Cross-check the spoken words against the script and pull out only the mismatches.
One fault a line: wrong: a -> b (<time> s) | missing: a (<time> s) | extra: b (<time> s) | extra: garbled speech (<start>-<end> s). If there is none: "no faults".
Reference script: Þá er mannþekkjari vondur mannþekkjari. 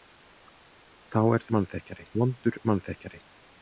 no faults